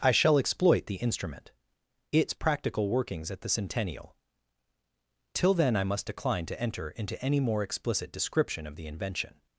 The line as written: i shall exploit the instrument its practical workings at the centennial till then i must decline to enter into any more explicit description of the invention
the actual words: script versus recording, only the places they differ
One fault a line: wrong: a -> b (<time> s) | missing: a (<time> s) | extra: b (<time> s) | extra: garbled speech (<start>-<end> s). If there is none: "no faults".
no faults